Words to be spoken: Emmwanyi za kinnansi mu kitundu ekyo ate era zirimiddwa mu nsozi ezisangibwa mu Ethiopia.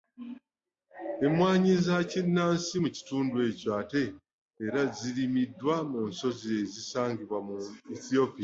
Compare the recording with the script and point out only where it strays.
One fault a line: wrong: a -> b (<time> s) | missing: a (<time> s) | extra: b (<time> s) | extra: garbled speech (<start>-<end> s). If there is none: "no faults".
no faults